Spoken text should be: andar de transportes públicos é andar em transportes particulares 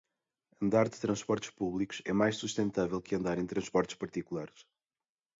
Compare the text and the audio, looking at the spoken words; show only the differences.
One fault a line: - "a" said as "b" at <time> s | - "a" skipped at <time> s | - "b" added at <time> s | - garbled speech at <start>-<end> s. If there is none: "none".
- "mais sustentável que" added at 2.1 s